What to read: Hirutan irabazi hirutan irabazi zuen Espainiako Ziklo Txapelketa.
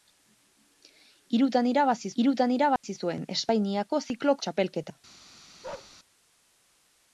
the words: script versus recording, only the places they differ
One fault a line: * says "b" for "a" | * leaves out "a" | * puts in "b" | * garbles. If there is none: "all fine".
all fine